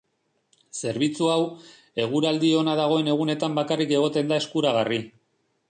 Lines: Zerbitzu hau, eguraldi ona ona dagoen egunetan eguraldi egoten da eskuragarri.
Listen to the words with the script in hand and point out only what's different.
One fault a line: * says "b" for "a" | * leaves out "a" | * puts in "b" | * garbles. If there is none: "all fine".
* leaves out "ona"
* says "bakarrik" for "eguraldi"